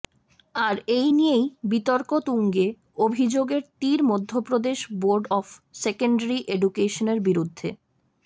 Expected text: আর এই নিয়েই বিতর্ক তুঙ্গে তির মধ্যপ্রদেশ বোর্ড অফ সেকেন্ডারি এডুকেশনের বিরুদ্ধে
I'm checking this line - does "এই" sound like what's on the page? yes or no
yes